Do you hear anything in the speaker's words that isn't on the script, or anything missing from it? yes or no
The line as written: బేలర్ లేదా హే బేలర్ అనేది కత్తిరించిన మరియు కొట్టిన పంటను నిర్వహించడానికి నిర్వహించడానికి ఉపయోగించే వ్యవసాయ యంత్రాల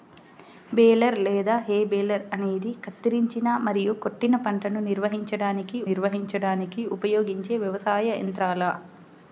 no